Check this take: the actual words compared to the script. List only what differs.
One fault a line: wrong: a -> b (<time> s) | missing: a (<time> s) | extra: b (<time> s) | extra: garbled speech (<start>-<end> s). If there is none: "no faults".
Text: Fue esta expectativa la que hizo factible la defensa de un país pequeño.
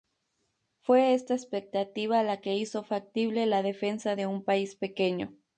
no faults